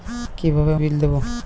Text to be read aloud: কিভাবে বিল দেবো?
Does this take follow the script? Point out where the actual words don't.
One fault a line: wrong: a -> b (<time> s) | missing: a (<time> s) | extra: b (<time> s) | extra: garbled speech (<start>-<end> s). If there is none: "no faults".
no faults